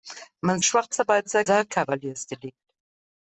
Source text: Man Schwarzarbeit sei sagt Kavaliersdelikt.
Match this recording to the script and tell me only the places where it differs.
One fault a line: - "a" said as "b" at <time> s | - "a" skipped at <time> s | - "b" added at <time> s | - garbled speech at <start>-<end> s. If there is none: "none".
none